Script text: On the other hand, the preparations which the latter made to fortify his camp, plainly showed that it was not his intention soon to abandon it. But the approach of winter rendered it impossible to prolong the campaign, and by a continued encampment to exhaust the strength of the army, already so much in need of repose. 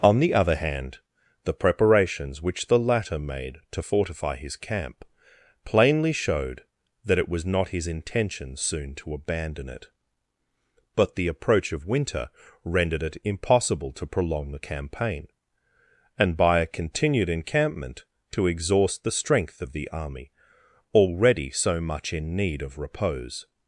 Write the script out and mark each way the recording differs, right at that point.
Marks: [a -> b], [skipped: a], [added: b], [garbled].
On the other hand, the preparations which the latter made to fortify his camp, plainly showed that it was not his intention soon to abandon it. But the approach of winter rendered it impossible to prolong the campaign, and by a continued encampment to exhaust the strength of the army, already so much in need of repose.